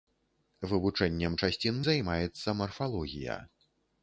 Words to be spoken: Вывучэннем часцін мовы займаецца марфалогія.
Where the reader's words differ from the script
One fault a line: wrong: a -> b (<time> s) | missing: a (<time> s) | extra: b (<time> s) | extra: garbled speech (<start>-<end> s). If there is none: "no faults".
missing: мовы (1.8 s)